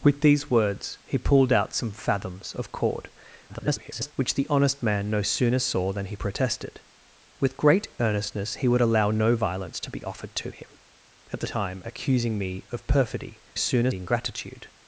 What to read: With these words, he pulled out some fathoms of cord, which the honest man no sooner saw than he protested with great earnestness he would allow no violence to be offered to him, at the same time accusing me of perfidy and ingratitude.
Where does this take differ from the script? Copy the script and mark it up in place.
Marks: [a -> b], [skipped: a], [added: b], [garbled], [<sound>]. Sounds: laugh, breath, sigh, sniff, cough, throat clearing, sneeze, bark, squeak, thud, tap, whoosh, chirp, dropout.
With these words, he pulled out some fathoms of cord, [garbled] which the honest man no sooner saw than he protested with great earnestness he would allow no violence to be offered to him, at the [skipped: same] time accusing me of perfidy [and -> sooner] ingratitude.